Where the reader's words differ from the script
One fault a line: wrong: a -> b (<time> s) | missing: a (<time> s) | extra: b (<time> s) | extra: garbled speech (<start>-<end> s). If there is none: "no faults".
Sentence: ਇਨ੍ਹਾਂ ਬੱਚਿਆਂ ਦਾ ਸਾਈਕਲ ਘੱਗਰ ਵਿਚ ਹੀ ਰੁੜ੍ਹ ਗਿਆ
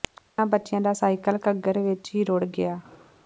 no faults